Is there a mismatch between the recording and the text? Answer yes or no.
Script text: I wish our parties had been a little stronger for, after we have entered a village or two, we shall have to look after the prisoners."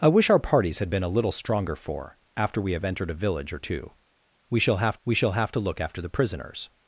yes